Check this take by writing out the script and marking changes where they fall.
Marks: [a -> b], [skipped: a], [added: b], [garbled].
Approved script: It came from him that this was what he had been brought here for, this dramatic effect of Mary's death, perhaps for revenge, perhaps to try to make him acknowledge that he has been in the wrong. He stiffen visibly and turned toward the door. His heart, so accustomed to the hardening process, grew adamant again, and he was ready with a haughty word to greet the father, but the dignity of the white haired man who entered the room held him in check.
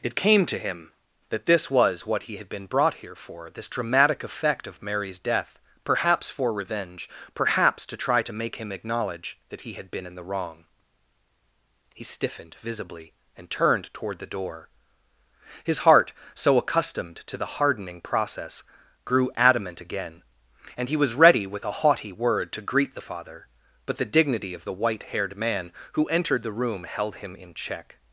It came [from -> to] him that this was what he had been brought here for, this dramatic effect of Mary's death, perhaps for revenge, perhaps to try to make him acknowledge that he [has -> had] been in the wrong. He [stiffen -> stiffened] visibly and turned toward the door. His heart, so accustomed to the hardening process, grew adamant again, and he was ready with a haughty word to greet the father, but the dignity of the white haired man who entered the room held him in check.